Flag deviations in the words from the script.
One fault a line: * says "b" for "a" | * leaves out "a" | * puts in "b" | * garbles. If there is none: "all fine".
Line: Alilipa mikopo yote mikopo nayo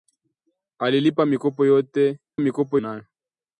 all fine